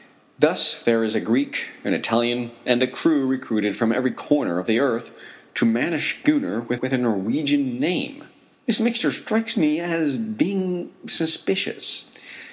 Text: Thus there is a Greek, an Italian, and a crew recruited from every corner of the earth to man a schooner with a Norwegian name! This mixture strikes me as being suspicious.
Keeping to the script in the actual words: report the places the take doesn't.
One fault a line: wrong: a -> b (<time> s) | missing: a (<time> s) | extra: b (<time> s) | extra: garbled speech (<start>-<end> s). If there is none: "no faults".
extra: with (6.7 s)